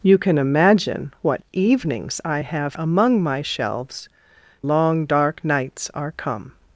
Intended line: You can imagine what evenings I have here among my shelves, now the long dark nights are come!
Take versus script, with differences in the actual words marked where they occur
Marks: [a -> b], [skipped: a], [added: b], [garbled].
You can imagine what evenings I have [skipped: here] among my shelves, [skipped: now the] long dark nights are come!